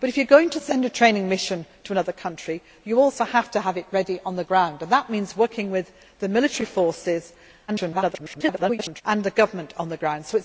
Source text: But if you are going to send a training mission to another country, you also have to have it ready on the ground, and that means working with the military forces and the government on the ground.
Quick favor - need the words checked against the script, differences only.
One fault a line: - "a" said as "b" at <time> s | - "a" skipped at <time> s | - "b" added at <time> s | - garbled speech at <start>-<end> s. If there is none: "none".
- garbled speech at 7.7-9.0 s